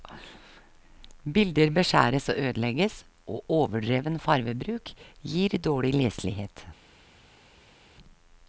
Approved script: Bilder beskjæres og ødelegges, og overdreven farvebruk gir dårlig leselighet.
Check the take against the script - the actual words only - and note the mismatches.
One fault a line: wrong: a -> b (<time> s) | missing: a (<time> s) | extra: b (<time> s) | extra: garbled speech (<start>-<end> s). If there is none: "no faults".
no faults